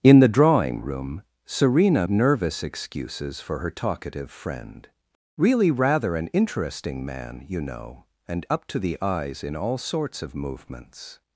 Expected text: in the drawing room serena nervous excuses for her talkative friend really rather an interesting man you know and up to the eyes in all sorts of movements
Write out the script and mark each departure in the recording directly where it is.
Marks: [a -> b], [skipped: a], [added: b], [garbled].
in the drawing room serena nervous excuses for her talkative friend really rather an interesting man you know and up to the eyes in all sorts of movements